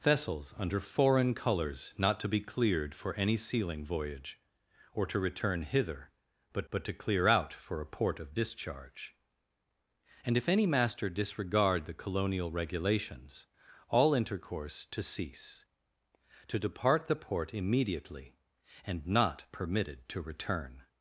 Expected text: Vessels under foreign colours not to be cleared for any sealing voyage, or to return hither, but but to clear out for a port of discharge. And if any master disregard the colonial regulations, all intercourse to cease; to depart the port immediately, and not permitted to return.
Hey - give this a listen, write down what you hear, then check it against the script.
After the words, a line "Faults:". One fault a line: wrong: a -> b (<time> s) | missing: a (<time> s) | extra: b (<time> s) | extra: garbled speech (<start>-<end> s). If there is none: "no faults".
Vessels under foreign colours not to be cleared for any sealing voyage, or to return hither, but but to clear out for a port of discharge. And if any master disregard the colonial regulations, all intercourse to cease; to depart the port immediately, and not permitted to return.
Faults:
no faults